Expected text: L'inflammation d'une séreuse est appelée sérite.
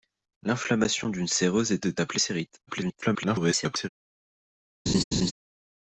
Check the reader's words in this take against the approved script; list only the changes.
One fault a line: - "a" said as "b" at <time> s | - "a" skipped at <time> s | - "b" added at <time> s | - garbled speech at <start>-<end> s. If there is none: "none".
- "est" added at 1.9 s
- garbled speech at 2.7-3.9 s